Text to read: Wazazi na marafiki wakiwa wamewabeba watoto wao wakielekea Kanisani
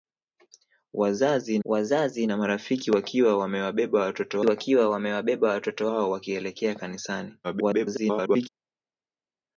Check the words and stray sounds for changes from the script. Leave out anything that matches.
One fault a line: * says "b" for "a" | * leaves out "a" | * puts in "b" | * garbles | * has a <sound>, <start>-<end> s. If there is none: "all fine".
* puts in "wazazi"
* puts in "wakiwa wamewabeba watoto"
* garbles